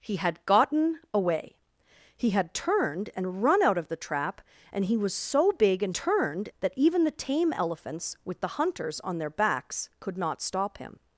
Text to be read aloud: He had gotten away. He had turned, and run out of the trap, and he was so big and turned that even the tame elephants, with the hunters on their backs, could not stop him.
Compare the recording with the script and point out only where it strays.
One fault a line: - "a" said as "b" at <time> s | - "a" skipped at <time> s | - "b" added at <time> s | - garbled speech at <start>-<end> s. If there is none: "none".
none